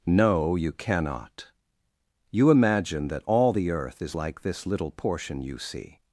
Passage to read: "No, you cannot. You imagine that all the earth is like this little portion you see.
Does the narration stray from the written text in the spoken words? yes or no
no